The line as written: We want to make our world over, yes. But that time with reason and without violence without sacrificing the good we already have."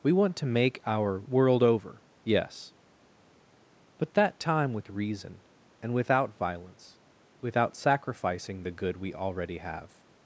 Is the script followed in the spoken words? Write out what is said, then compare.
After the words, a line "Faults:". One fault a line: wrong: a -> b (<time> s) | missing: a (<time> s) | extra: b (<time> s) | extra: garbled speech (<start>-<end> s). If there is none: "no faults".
We want to make our world over, yes. But that time with reason and without violence without sacrificing the good we already have."
Faults:
no faults